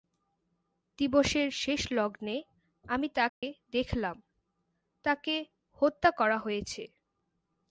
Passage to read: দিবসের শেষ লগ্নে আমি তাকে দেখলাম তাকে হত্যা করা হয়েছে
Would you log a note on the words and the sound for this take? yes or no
yes